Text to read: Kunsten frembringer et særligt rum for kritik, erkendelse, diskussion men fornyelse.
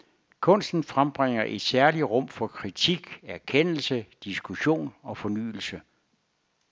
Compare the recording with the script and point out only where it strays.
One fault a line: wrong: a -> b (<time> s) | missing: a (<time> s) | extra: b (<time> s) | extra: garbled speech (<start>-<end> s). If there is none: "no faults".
wrong: men -> og (5.0 s)